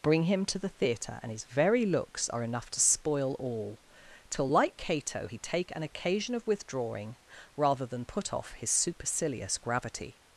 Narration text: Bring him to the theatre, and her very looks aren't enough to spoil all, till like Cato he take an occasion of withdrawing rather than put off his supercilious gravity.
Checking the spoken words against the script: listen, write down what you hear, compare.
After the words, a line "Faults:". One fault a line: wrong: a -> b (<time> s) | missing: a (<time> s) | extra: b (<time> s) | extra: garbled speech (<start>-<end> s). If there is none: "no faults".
Bring him to the theatre, and his very looks are enough to spoil all, till like Cato he take an occasion of withdrawing rather than put off his supercilious gravity.
Faults:
wrong: her -> his (1.3 s)
wrong: aren't -> are (2.3 s)